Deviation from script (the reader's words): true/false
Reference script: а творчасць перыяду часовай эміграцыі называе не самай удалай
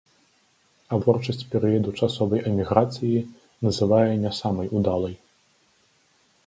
false